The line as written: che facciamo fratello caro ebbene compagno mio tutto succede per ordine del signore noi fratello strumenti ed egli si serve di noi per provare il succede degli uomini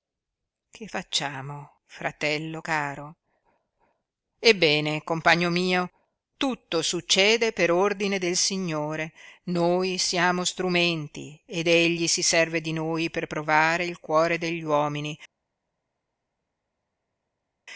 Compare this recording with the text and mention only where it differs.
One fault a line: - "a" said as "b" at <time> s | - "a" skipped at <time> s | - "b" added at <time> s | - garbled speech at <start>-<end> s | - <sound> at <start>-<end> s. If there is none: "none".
- "fratello" said as "siamo" at 10.0 s
- "succede" said as "cuore" at 14.0 s